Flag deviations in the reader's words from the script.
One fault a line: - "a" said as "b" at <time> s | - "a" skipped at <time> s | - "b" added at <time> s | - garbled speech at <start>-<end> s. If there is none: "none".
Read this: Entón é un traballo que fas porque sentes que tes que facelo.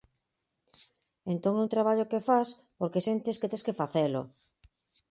none